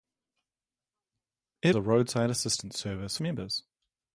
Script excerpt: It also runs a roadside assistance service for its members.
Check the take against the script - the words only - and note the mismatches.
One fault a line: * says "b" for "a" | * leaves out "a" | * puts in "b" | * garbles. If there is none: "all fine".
* leaves out "also runs"
* leaves out "for its"